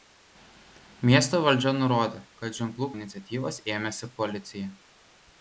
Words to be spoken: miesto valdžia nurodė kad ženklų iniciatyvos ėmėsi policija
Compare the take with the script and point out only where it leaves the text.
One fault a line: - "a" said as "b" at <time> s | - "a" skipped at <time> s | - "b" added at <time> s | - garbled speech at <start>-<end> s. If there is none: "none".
none